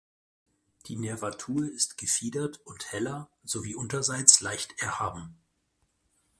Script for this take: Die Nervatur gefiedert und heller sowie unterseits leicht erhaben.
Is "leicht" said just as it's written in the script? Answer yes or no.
yes